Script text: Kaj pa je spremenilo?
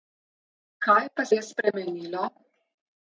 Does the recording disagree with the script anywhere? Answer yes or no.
no